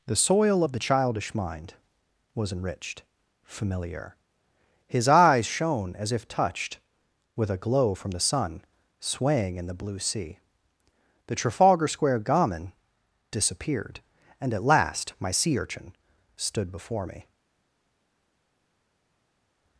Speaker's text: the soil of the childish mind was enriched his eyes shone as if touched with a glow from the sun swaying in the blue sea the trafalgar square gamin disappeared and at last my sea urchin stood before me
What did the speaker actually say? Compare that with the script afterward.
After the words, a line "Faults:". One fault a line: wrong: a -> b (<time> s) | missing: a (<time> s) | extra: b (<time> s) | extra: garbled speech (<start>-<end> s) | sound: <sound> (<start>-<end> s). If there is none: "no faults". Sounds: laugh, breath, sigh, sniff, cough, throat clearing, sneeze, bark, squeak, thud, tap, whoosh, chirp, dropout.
the soil of the childish mind was enriched familiar his eyes shone as if touched with a glow from the sun swaying in the blue sea the trafalgar square gamin disappeared and at last my sea urchin stood before me
Faults:
extra: familiar (3.4 s)